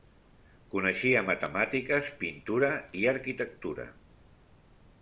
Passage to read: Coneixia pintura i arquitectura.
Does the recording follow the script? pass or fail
fail